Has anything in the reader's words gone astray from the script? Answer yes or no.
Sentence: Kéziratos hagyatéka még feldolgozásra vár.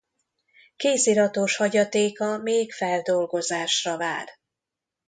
no